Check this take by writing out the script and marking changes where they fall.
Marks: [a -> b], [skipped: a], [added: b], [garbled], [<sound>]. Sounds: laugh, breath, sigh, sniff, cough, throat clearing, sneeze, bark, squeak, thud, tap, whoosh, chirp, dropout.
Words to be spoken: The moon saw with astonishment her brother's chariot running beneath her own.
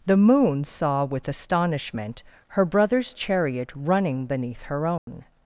The moon saw with astonishment her brother's chariot running beneath her own. [dropout]